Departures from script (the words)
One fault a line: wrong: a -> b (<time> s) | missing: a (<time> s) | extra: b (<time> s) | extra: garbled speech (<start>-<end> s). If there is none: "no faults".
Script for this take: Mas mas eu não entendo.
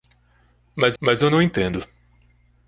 no faults